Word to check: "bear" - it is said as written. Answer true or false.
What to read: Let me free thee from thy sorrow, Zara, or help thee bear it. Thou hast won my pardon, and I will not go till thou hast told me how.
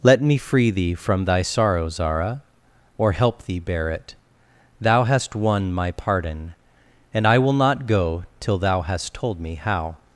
true